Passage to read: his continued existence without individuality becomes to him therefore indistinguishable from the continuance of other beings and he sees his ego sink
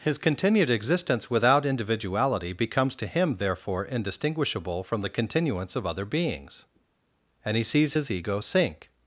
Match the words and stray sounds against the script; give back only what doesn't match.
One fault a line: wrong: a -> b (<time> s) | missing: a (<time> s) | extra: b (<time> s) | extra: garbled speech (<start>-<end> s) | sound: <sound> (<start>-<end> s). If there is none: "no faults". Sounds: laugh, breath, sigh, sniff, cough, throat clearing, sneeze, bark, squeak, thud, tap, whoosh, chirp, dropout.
no faults